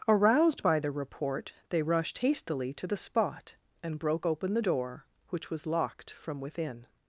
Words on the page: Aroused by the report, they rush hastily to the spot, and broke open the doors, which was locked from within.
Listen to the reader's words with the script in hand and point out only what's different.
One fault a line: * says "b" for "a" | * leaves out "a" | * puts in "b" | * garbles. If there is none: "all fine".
* says "rushed" for "rush"
* says "door" for "doors"